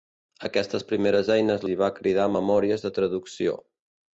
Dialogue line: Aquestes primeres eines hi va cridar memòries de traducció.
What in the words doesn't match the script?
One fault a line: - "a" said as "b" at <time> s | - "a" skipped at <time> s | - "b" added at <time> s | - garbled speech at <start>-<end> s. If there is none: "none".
none